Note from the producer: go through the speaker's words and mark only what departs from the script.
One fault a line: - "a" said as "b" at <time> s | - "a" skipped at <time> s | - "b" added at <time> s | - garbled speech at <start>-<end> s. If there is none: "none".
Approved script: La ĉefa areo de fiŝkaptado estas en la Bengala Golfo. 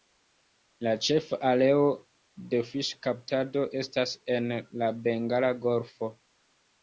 none